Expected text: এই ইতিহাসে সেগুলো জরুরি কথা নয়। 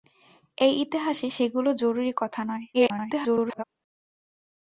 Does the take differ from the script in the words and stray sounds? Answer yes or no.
yes